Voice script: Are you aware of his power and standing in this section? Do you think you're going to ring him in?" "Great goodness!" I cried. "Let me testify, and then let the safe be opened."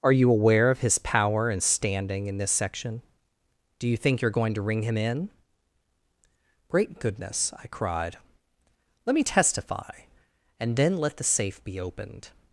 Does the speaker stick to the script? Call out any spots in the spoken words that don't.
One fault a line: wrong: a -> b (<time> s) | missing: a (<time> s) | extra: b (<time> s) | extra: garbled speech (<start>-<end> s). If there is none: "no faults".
no faults